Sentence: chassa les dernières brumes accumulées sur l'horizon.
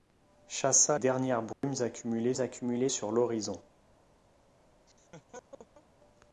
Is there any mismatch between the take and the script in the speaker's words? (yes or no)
yes